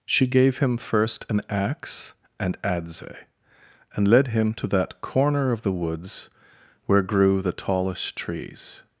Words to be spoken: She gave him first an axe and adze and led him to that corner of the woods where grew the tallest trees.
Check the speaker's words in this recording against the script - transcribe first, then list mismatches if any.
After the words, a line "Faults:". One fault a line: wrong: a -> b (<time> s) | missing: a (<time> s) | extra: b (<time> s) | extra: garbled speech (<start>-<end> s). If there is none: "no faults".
She gave him first an axe and adze and led him to that corner of the woods where grew the tallest trees.
Faults:
no faults